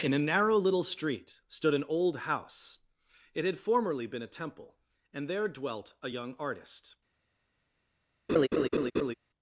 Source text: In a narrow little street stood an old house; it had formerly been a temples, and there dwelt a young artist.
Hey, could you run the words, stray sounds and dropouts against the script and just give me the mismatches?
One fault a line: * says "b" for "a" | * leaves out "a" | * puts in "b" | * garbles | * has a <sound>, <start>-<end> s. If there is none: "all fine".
* says "temple" for "temples"
* has a laugh, 8.3-9.1 s